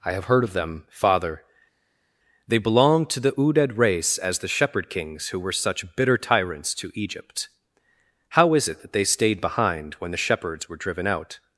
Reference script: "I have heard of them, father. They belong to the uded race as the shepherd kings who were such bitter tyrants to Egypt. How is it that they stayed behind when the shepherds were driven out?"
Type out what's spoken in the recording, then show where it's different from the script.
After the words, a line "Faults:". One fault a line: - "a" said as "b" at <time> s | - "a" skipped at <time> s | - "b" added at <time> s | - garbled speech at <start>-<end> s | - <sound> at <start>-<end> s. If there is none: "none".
"I have heard of them, father. They belong to the uded race as the shepherd kings who were such bitter tyrants to Egypt. How is it that they stayed behind when the shepherds were driven out?"
Faults:
none